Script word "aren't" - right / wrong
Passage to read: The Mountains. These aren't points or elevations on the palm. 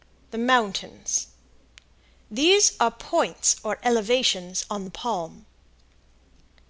wrong